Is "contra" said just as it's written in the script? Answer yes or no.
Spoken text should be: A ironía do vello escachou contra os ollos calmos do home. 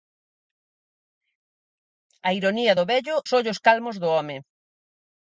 no